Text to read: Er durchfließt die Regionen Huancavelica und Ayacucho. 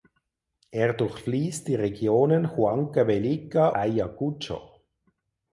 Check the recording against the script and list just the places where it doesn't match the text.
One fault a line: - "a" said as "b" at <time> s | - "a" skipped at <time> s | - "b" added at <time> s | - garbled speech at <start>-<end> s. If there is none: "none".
- "und" skipped at 3.7 s